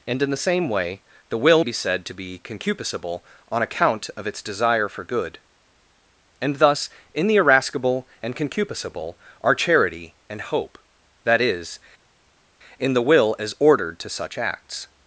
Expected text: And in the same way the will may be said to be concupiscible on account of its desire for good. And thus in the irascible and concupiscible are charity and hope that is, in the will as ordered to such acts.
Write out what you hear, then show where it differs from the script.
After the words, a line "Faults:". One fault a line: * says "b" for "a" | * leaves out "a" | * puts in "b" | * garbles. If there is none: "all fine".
And in the same way the will be said to be concupiscible on account of its desire for good. And thus in the irascible and concupiscible are charity and hope that is, in the will as ordered to such acts.
Faults:
* leaves out "may"